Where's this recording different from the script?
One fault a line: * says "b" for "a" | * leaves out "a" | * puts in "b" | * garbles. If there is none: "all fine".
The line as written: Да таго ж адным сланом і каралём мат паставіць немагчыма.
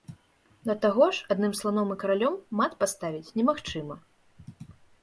all fine